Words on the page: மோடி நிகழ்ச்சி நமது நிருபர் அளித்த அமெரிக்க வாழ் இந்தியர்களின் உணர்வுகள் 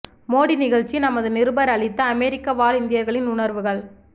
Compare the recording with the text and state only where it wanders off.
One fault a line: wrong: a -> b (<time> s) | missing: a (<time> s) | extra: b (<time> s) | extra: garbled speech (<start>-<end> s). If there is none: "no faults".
no faults